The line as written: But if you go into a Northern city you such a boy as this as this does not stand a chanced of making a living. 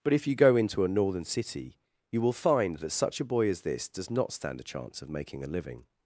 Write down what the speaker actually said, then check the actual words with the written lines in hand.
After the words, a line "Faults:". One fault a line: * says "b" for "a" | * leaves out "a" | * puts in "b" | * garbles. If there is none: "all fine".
But if you go into a Northern city you will find that such a boy as this does not stand a chance of making a living.
Faults:
* puts in "will find that"
* leaves out "as this"
* says "chance" for "chanced"